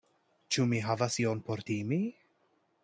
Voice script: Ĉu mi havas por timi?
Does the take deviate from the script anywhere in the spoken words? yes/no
yes